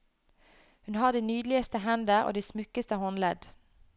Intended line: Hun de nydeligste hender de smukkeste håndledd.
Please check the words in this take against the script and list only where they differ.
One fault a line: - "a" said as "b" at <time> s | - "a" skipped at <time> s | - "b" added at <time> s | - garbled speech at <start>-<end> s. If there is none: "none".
- "har" added at 0.9 s
- "og" added at 2.2 s